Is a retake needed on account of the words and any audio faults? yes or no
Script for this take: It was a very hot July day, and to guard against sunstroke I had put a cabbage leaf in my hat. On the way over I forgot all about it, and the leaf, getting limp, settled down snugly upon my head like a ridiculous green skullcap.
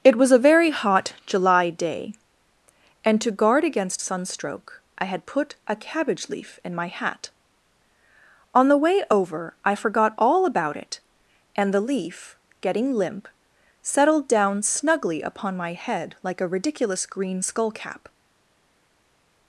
no